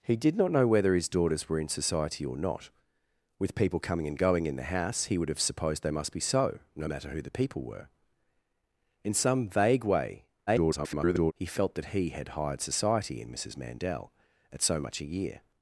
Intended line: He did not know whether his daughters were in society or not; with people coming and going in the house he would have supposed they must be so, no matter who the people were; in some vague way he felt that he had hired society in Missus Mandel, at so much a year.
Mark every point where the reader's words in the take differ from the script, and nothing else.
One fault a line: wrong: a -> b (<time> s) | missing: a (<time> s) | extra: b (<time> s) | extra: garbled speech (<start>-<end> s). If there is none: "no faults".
extra: garbled speech (10.5-11.3 s)